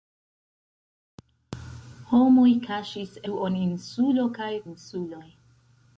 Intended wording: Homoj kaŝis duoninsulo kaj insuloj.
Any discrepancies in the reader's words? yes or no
no